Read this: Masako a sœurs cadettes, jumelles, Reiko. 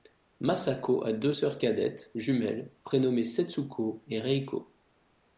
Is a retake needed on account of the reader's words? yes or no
yes